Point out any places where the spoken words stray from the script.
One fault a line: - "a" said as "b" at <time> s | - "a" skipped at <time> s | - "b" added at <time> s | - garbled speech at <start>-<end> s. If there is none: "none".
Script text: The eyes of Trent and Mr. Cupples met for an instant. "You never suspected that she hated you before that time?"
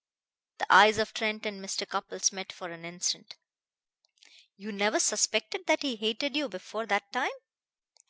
- "she" said as "he" at 5.8 s